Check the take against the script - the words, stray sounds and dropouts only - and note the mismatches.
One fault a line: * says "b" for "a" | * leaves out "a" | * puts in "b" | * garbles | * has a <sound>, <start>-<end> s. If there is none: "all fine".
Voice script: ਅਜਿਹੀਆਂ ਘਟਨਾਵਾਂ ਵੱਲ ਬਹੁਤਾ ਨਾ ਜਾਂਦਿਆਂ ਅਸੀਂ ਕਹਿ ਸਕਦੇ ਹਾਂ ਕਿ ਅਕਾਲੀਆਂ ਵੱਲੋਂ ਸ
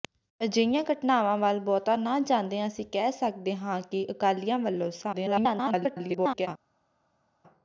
* garbles